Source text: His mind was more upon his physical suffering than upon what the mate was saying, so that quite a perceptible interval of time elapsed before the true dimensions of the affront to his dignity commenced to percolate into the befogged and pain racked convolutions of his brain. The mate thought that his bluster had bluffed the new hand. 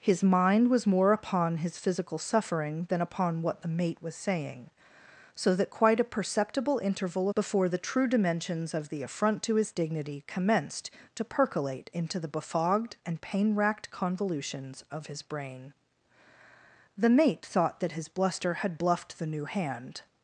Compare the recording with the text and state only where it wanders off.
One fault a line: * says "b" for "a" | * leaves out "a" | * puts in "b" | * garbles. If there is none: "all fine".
* leaves out "of time elapsed"